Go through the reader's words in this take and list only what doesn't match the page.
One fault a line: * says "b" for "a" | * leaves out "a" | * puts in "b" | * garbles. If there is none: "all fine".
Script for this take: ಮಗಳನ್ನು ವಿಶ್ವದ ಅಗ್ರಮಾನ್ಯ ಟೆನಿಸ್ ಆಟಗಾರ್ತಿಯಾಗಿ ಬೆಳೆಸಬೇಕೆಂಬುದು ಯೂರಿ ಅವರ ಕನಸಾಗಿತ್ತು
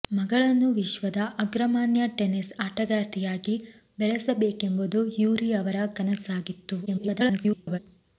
* garbles